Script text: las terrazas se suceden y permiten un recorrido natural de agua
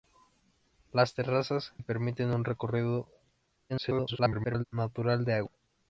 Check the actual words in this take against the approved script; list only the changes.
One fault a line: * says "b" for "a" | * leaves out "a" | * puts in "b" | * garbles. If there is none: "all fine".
* leaves out "se suceden"
* garbles